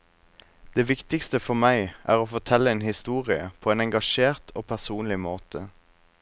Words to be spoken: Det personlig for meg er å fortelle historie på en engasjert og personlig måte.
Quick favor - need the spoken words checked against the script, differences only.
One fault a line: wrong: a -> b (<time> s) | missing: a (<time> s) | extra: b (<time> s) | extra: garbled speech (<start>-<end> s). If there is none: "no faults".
wrong: personlig -> viktigste (0.9 s)
extra: en (2.7 s)